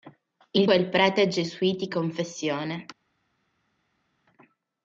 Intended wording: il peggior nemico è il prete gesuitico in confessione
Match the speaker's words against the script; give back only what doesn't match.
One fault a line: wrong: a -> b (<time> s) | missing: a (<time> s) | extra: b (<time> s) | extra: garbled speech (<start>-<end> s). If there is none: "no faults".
missing: peggior nemico (0.7 s)
missing: in (2.0 s)